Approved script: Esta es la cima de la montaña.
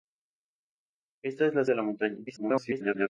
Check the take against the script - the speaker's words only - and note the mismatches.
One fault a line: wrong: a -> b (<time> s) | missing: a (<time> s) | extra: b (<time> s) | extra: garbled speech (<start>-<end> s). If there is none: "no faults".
missing: cima (1.6 s)
extra: garbled speech (2.3-3.1 s)